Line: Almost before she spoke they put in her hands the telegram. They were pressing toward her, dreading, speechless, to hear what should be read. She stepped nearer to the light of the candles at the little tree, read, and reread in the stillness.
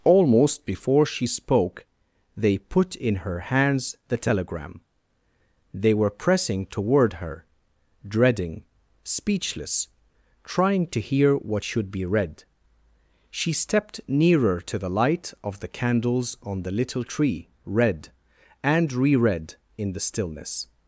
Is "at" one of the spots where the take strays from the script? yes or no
yes